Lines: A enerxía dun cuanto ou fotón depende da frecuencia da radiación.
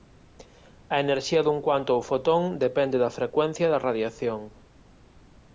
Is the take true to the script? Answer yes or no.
yes